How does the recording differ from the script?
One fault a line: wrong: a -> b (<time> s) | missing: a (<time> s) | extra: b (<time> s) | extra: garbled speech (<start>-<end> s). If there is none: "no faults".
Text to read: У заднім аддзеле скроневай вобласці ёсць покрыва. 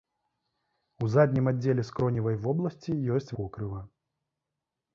no faults